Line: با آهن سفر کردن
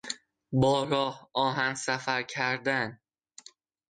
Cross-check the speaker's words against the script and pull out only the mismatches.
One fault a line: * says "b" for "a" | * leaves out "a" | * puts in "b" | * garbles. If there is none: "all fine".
* puts in "راه"